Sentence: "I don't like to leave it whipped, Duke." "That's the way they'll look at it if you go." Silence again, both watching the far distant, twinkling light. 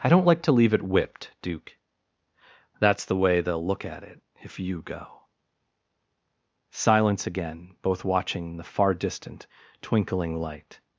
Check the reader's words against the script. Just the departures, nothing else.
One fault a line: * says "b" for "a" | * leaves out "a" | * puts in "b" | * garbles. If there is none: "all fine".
all fine